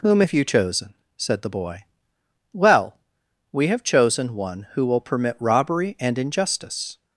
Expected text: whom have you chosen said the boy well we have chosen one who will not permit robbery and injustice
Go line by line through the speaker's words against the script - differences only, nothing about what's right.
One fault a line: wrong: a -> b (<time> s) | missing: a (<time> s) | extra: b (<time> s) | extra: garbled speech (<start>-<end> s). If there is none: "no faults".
missing: not (5.0 s)